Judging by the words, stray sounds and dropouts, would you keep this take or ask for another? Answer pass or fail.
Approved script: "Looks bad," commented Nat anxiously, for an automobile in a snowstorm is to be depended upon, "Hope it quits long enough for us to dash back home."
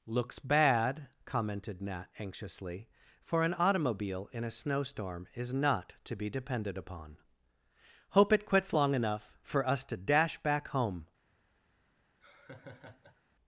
fail